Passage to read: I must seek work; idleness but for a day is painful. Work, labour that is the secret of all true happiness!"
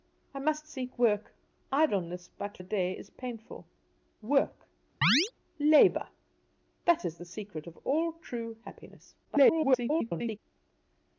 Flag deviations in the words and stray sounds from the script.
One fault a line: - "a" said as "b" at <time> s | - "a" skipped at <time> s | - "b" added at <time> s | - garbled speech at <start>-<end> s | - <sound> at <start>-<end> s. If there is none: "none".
- "for" skipped at 2.6 s
- chirp at 5.0-5.3 s
- garbled speech at 9.2-10.4 s